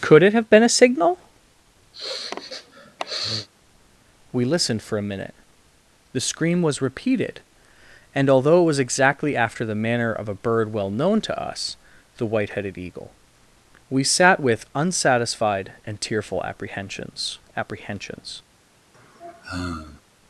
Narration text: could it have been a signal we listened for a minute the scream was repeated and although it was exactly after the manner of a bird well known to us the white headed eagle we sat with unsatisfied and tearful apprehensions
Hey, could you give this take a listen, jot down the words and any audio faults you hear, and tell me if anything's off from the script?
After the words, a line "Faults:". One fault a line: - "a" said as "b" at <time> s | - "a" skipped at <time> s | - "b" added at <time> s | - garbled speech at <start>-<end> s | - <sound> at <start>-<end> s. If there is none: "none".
could it have been a signal we listened for a minute the scream was repeated and although it was exactly after the manner of a bird well known to us the white headed eagle we sat with unsatisfied and tearful apprehensions apprehensions
Faults:
- sniff at 1.9-3.5 s
- "apprehensions" added at 17.6 s
- sigh at 18.9-20.0 s